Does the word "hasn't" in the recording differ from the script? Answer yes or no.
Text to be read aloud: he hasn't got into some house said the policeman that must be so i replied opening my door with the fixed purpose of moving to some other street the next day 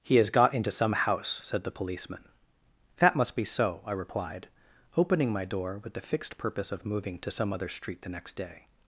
yes